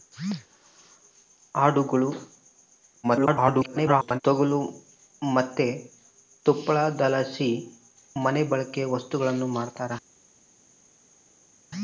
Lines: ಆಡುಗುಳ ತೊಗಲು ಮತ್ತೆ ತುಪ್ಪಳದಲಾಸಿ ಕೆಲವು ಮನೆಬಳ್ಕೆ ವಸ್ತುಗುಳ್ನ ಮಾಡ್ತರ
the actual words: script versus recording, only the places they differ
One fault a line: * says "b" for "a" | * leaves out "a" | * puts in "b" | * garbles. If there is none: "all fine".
* garbles
* leaves out "ಕೆಲವು"